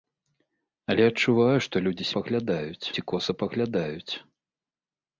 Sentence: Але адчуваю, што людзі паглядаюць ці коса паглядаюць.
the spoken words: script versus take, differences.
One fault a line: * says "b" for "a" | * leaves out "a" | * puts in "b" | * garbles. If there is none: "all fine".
all fine